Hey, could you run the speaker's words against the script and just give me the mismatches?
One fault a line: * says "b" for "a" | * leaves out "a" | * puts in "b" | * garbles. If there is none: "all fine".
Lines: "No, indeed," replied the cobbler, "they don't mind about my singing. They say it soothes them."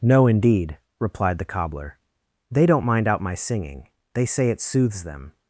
* says "out" for "about"